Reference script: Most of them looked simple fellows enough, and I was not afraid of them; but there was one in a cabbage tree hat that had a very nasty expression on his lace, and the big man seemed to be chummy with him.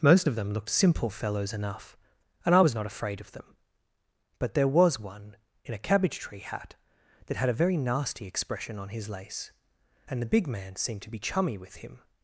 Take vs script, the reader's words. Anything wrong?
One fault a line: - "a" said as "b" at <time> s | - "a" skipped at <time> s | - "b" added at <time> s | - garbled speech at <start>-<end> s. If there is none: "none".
none